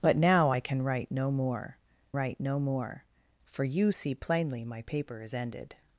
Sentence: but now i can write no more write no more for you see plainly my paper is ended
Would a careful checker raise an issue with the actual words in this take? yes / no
no